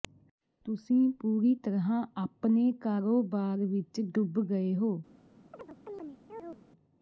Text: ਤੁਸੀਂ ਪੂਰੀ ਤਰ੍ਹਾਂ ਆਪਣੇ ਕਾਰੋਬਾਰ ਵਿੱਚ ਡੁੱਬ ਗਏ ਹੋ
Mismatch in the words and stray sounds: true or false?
true